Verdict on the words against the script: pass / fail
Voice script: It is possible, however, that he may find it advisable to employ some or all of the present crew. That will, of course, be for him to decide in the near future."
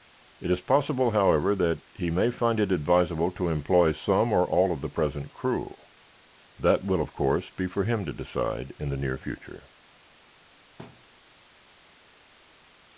pass